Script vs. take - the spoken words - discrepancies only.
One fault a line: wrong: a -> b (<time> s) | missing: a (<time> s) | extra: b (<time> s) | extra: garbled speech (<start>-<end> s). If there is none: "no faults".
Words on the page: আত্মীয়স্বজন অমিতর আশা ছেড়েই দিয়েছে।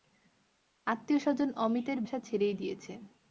no faults